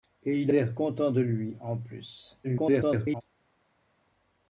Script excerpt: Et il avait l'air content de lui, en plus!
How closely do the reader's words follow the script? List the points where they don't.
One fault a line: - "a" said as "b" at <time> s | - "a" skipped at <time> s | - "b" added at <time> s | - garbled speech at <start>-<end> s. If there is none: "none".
- "avait" skipped at 0.5 s
- garbled speech at 2.4-3.2 s